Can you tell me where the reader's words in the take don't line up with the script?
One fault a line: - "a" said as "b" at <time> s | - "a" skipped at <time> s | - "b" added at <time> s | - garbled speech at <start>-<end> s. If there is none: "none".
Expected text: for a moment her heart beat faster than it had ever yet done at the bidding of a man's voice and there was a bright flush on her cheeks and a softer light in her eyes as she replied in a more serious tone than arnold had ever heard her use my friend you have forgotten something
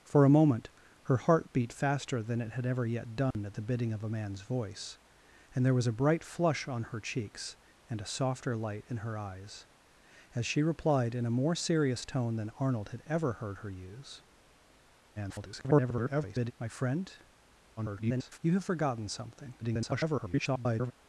- garbled speech at 15.2-16.5 s
- garbled speech at 17.8-18.4 s
- garbled speech at 19.6-20.9 s